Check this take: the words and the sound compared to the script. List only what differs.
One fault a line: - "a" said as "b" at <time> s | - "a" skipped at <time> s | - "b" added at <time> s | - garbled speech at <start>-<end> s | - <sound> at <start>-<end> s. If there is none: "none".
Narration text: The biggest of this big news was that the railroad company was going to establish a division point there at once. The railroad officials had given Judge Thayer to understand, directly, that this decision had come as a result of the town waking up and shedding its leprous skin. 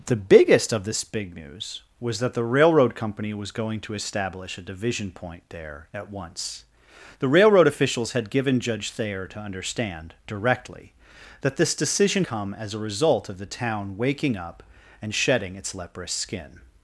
- "had" skipped at 12.2 s